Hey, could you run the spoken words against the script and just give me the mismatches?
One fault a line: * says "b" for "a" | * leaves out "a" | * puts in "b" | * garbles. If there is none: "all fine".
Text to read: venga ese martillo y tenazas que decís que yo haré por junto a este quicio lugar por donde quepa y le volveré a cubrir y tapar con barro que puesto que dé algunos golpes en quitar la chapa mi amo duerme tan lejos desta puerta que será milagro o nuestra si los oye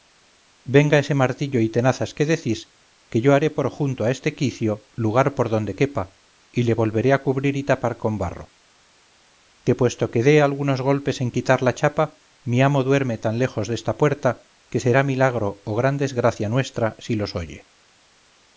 * puts in "gran desgracia"